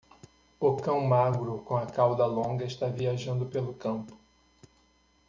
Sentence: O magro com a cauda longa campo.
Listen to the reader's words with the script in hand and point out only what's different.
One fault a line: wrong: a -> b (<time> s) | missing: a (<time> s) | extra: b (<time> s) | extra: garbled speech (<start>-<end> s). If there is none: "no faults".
extra: cão (0.8 s)
extra: está viajando pelo (2.6 s)